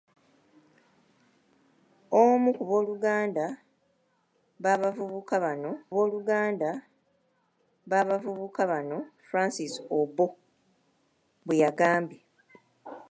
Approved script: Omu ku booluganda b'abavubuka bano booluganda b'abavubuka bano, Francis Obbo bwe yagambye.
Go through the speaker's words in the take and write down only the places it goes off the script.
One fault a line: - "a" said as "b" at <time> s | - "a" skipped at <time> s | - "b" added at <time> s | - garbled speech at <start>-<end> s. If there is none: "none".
none